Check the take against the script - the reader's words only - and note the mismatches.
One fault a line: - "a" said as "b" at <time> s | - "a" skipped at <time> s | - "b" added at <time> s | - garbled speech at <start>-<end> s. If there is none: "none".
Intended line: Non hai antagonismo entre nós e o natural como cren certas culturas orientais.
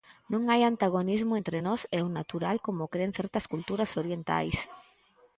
none